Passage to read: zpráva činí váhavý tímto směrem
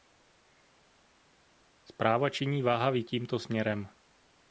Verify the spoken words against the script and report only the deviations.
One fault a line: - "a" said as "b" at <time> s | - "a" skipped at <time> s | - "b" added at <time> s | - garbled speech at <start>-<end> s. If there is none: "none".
none